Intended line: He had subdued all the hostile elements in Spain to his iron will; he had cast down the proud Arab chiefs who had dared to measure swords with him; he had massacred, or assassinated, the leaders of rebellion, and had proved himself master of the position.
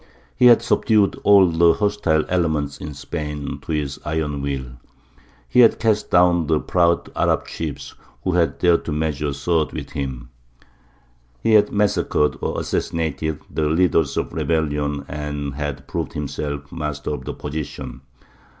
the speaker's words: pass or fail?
pass